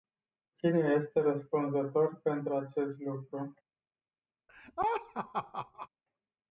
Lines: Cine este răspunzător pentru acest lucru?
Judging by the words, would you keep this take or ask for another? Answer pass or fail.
pass